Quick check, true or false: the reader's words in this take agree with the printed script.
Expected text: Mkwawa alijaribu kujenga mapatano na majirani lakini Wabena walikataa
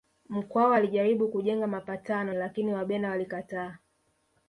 false